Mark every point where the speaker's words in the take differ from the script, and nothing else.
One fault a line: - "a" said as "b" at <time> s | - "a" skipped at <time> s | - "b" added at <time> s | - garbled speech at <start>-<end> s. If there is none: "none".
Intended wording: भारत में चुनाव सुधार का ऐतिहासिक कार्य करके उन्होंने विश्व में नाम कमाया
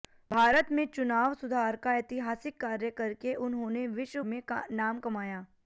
none